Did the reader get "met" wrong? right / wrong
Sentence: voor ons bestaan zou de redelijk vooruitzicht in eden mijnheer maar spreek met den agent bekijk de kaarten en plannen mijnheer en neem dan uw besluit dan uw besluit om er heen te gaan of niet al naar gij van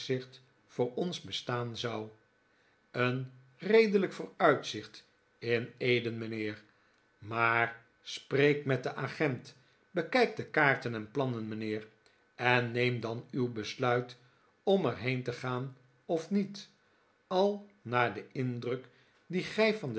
right